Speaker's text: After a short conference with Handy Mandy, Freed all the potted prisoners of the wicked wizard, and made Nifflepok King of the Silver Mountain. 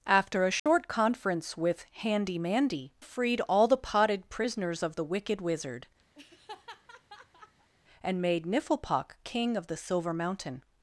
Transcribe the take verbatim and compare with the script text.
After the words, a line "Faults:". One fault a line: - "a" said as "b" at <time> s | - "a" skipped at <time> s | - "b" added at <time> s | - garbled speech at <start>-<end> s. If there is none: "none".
After a short conference with Handy Mandy, Freed all the potted prisoners of the wicked wizard, and made Nifflepok King of the Silver Mountain.
Faults:
none